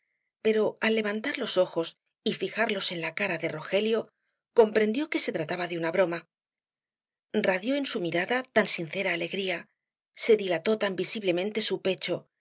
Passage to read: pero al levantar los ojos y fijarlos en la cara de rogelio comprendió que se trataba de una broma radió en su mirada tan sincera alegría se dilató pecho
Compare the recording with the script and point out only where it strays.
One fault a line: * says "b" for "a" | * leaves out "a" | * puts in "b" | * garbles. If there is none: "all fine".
* puts in "tan visiblemente su"